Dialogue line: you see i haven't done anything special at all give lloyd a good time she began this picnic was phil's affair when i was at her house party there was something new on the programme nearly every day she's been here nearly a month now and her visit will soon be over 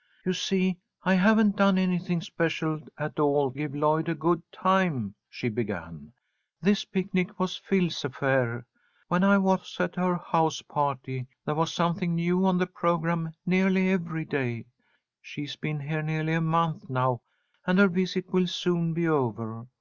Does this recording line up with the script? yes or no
yes